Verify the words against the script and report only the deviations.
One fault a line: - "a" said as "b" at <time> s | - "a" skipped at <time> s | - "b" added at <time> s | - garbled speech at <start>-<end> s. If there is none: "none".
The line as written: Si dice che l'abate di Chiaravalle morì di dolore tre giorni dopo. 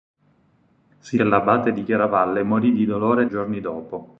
- "dice" skipped at 1.2 s
- "tre" skipped at 3.3 s